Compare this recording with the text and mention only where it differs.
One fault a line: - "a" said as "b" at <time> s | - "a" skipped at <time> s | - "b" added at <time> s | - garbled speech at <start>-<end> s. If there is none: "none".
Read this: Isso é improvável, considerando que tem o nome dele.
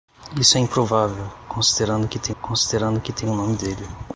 - "considerando que tem" added at 2.4 s